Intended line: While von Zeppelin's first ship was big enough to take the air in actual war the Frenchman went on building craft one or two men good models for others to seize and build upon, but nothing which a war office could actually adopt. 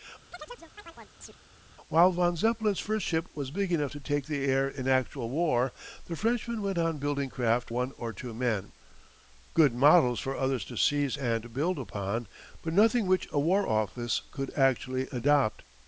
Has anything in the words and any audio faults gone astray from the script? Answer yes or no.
yes